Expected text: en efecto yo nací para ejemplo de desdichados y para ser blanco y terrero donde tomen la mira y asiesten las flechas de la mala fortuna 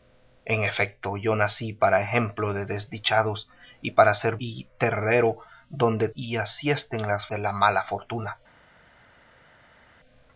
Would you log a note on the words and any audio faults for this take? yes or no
yes